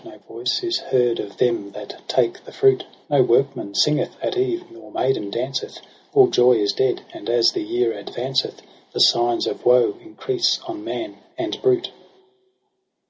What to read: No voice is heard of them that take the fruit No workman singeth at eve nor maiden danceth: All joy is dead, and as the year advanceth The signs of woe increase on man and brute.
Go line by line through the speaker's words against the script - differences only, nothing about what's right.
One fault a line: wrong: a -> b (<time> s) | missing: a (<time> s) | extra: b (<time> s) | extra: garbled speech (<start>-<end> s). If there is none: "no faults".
no faults